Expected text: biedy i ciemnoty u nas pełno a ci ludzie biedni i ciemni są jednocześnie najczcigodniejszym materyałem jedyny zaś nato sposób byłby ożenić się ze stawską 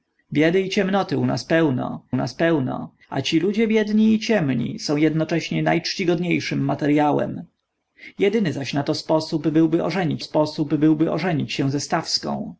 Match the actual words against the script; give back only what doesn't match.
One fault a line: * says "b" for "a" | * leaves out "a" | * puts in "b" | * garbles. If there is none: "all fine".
* puts in "nas pełno"
* puts in "sposób byłby ożenić"